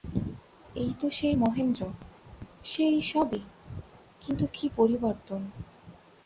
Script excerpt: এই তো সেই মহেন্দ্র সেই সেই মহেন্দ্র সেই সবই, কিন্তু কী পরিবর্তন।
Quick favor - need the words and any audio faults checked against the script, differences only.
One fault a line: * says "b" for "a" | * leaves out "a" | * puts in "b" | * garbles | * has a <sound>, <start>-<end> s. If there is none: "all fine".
* leaves out "সেই মহেন্দ্র সেই"